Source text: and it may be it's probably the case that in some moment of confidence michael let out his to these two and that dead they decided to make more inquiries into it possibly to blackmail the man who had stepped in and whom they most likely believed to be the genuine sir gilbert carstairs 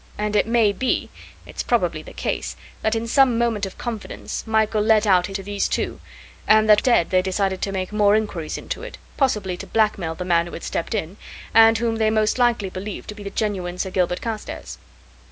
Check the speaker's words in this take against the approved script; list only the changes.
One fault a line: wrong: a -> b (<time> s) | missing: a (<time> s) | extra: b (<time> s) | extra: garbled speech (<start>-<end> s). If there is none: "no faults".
no faults